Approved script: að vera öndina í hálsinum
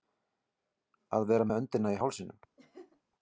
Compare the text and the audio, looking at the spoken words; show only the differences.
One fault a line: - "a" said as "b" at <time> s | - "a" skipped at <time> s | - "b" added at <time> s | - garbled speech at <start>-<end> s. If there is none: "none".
- "með" added at 1.5 s